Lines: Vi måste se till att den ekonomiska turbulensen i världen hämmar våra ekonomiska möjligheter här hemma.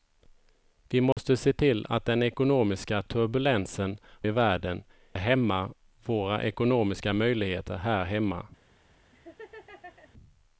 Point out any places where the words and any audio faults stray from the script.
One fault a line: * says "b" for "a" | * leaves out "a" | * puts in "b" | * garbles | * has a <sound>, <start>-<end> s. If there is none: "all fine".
* has a dropout, 1.1-1.2 s
* has a laugh, 9.1-10.1 s